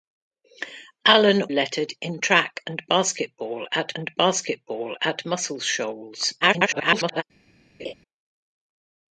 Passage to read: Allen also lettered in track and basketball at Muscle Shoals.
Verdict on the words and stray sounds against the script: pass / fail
fail